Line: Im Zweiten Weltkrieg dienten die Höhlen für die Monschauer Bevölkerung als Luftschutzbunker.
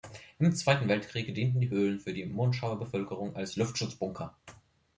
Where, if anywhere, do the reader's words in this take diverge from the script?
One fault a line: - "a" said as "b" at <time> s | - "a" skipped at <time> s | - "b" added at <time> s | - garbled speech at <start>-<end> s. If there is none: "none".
none